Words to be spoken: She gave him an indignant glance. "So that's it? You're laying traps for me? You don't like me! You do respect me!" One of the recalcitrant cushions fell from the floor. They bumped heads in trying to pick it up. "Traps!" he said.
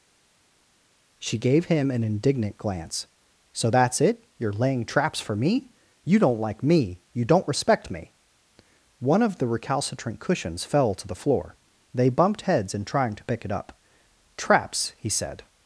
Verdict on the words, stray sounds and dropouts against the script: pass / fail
fail